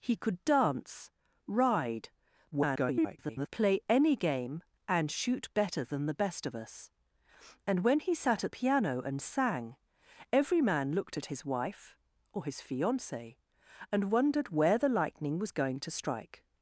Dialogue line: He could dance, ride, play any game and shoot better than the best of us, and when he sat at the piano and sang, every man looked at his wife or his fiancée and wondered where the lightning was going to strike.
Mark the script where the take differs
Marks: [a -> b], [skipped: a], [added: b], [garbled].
He could dance, ride, [garbled] play any game and shoot better than the best of us, and when he sat at [skipped: the] piano and sang, every man looked at his wife or his fiancée and wondered where the lightning was going to strike.